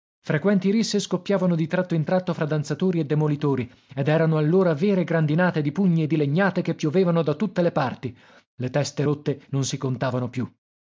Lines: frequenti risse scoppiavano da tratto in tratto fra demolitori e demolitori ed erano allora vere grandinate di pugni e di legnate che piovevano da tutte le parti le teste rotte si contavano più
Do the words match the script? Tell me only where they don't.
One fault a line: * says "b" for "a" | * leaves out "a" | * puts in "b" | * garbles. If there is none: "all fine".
* says "di" for "da"
* says "danzatori" for "demolitori"
* puts in "non"